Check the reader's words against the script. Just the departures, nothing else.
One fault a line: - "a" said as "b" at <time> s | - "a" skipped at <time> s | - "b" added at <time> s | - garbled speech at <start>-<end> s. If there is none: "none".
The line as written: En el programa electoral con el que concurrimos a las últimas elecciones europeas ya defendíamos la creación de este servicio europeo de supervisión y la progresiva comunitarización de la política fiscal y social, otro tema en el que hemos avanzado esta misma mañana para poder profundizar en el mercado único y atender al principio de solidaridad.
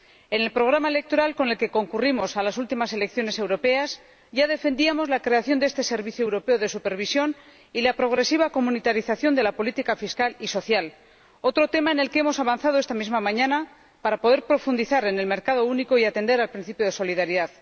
none